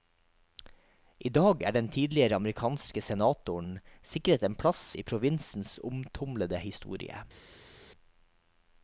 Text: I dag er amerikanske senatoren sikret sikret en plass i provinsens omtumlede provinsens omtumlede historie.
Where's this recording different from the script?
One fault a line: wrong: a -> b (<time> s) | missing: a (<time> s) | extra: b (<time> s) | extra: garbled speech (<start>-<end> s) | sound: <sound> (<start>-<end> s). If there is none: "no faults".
extra: den tidligere (1.8 s)
missing: sikret (4.5 s)
missing: provinsens omtumlede (6.6 s)